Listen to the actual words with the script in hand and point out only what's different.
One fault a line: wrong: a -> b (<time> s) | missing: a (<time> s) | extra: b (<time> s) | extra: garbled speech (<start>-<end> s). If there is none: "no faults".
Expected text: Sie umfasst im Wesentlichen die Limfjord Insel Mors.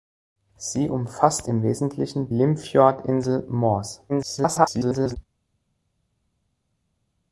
missing: die (2.3 s)
extra: garbled speech (4.1-5.2 s)